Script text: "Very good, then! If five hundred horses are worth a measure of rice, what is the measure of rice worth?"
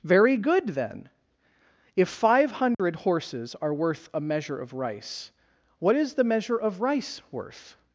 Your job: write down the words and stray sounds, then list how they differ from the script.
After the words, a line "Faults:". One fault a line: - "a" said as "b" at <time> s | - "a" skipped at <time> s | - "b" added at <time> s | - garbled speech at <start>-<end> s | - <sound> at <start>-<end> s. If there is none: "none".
"Very good, then! If five hundred horses are worth a measure of rice, what is the measure of rice worth?"
Faults:
- dropout at 2.7-2.8 s